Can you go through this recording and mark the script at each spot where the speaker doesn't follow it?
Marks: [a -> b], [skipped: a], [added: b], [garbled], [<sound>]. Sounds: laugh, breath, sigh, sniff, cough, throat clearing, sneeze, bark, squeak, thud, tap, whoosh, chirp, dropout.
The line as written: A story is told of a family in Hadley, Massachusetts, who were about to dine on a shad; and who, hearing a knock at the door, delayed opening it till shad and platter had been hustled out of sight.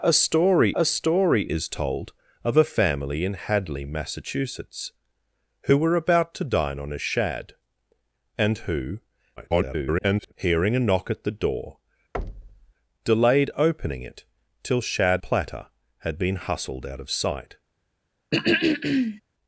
A story [added: a story] is told of a family in Hadley, Massachusetts, who were about to dine on a shad; and who, [garbled] hearing a knock at the door, [thud] delayed opening it till shad [skipped: and] platter had been hustled out of sight. [throat clearing]